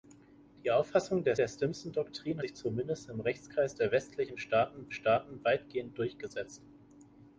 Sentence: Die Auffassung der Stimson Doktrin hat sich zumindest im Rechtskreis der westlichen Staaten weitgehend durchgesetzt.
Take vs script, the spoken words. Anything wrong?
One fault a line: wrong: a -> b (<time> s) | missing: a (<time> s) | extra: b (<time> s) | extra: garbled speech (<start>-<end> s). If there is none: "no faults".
extra: der (1.4 s)
missing: hat (2.4 s)
extra: Staaten (4.9 s)